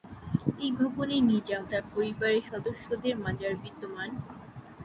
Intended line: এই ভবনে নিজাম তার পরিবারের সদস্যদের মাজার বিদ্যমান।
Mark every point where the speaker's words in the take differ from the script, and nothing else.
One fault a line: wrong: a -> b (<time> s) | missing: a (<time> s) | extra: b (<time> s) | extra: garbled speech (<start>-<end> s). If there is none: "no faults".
no faults